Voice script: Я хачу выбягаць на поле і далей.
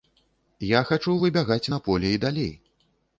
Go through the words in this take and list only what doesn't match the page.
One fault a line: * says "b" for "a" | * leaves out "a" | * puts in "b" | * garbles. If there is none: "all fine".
all fine